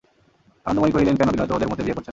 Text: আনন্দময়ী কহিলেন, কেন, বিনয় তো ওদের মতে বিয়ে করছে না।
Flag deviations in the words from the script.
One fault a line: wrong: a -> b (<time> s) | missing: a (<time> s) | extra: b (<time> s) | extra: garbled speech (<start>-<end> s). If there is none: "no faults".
no faults